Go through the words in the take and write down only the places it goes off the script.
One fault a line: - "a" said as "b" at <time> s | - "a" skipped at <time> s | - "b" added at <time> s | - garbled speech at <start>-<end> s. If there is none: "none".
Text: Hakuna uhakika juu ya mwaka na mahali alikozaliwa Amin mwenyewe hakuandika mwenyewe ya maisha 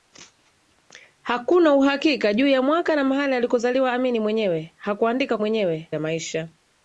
none